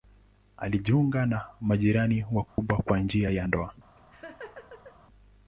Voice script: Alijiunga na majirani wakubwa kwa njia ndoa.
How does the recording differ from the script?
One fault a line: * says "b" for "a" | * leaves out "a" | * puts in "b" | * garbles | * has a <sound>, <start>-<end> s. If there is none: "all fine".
* has a dropout, 2.5-2.6 s
* puts in "ya"
* has a laugh, 4.0-5.0 s